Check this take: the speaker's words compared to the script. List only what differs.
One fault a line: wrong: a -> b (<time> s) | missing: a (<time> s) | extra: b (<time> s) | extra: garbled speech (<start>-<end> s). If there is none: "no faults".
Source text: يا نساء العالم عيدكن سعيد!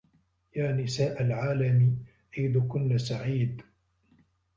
no faults